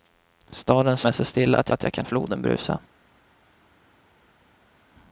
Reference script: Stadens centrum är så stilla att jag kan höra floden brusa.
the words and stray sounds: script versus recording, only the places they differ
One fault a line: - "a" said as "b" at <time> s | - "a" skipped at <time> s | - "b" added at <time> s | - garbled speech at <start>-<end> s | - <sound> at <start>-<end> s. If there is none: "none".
- "centrum" skipped at 1.0 s
- "att" added at 1.7 s
- "höra" skipped at 2.1 s